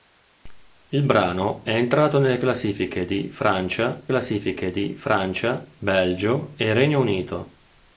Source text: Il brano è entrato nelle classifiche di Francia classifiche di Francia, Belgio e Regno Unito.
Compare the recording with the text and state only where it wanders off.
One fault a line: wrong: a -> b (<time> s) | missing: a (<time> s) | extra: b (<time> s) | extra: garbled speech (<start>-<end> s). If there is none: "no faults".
no faults